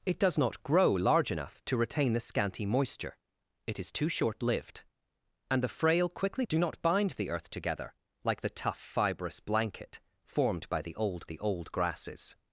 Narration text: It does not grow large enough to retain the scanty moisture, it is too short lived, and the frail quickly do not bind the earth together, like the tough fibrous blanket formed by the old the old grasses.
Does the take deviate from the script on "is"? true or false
false